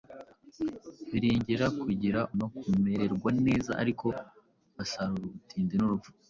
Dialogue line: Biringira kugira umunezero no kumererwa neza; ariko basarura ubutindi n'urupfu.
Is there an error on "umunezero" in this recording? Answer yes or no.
yes